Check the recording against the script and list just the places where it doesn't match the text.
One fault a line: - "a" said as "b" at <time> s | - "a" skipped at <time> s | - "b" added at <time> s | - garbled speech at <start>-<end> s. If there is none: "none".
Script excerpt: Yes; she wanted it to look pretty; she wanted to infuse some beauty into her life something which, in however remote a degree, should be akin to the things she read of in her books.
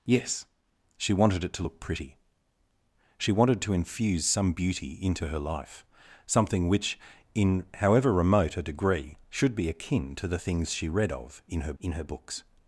- "in her" added at 11.8 s